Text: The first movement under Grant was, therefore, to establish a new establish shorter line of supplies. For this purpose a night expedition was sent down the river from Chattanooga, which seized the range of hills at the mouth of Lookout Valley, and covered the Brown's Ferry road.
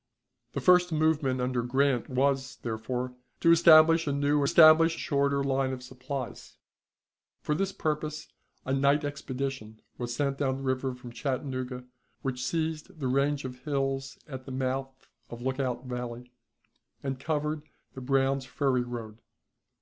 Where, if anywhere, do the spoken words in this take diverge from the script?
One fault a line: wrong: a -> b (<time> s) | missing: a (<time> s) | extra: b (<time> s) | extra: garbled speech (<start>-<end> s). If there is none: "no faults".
no faults